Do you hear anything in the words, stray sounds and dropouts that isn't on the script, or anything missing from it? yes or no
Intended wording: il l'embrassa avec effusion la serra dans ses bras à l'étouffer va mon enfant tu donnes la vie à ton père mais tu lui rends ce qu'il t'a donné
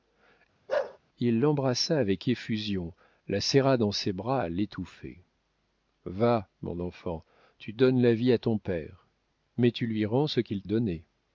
yes